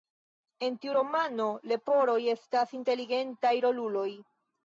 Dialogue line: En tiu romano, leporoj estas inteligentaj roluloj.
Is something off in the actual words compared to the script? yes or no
no